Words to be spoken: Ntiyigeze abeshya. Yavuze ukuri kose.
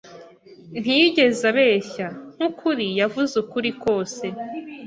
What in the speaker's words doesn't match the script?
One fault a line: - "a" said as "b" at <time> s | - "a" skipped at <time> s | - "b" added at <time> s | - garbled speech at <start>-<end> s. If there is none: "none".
- "Nkukuri" added at 2.4 s